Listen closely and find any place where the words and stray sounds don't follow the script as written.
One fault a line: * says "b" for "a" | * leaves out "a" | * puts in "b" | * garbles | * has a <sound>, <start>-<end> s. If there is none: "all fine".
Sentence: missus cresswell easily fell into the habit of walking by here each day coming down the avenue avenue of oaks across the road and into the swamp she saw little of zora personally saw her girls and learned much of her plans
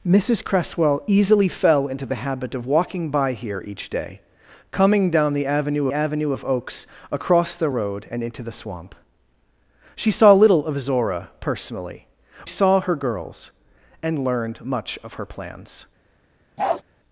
* has a bark, 16.6-16.8 s